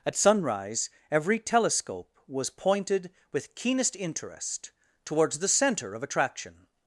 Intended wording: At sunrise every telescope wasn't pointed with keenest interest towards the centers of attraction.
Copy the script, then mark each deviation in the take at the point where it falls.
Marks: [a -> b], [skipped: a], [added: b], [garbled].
At sunrise every telescope [wasn't -> was] pointed with keenest interest towards the [centers -> center] of attraction.